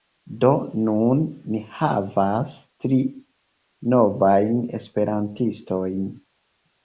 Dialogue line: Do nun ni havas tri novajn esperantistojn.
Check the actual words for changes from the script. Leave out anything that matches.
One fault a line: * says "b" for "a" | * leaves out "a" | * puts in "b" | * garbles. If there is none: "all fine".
all fine